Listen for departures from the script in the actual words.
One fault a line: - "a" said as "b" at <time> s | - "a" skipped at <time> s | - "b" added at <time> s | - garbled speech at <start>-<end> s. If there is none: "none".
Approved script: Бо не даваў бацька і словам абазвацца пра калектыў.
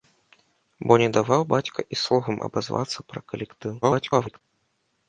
- garbled speech at 3.8-4.4 s